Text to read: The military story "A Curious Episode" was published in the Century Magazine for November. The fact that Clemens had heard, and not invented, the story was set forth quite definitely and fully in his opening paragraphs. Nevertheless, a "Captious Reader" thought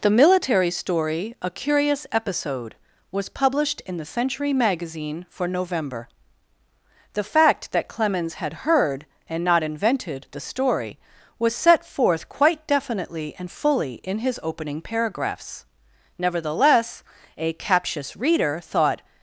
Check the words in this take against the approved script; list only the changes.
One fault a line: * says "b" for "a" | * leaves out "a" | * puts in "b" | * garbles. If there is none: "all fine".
all fine